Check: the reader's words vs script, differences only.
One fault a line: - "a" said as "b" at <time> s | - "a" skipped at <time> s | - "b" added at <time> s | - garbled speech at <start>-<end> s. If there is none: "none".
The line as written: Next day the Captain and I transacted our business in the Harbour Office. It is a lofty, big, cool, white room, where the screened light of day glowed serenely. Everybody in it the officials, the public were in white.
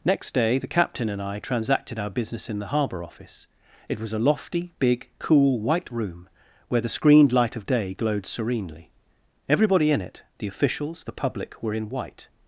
- "is" said as "was" at 4.0 s